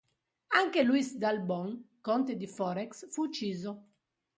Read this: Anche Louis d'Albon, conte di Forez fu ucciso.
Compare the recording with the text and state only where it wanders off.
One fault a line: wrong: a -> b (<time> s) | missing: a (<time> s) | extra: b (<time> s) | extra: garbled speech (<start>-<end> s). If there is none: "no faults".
no faults